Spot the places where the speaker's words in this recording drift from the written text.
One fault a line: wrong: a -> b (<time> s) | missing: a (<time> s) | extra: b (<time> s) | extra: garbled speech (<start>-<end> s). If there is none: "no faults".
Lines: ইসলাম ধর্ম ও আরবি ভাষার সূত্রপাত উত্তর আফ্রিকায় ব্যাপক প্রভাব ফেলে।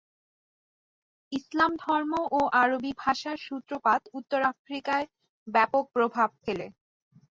no faults